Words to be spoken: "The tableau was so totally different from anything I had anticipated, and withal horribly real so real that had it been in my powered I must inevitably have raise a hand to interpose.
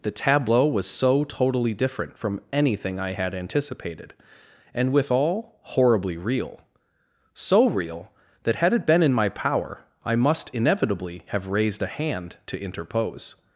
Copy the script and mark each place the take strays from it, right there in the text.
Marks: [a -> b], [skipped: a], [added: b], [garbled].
"The tableau was so totally different from anything I had anticipated, and withal horribly real so real that had it been in my [powered -> power] I must inevitably have [raise -> raised] a hand to interpose.